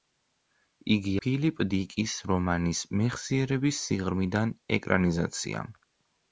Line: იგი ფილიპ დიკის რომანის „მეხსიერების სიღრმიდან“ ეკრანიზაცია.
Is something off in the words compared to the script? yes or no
no